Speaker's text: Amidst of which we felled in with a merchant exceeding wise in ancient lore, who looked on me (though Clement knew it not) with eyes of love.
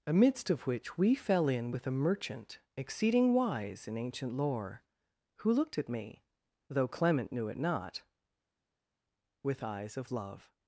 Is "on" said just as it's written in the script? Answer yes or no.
no